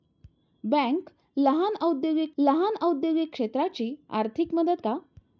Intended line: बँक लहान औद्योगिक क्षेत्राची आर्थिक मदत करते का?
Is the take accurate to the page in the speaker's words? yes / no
no